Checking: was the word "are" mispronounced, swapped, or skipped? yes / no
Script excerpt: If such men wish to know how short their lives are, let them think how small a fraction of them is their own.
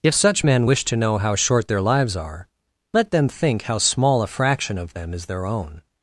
no